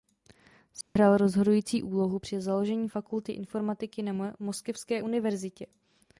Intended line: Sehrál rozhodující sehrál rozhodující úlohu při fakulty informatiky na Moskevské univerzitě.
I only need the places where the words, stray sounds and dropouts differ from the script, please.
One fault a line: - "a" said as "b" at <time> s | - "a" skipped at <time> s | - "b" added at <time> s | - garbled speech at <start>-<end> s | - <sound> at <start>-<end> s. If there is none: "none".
- dropout at 0.8-1.0 s
- "sehrál rozhodující" skipped at 1.8 s
- "založení" added at 2.4 s